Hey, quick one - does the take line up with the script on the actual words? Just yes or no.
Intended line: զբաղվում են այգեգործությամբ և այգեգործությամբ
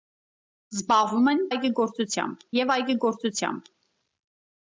yes